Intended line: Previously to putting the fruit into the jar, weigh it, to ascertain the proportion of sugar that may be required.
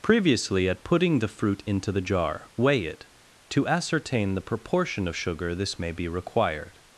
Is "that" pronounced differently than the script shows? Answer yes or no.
yes